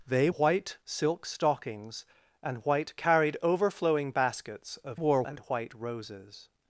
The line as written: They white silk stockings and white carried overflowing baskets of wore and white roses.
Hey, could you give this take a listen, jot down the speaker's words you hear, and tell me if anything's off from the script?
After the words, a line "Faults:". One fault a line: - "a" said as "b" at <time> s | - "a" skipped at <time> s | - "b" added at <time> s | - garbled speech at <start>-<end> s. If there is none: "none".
They white silk stockings and white carried overflowing baskets of wore and white roses.
Faults:
none